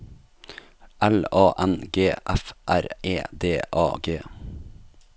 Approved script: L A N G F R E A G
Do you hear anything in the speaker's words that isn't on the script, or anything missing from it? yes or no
yes